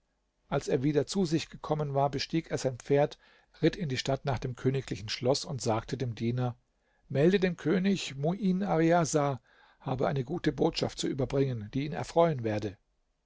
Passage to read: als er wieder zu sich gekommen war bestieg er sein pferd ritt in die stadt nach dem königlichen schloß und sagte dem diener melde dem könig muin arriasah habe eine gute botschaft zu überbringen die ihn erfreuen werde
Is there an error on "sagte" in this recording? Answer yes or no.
no